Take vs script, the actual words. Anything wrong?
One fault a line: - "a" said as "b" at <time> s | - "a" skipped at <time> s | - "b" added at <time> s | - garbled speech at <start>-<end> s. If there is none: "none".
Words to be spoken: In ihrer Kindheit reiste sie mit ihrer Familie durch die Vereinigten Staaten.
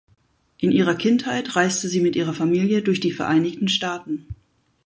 none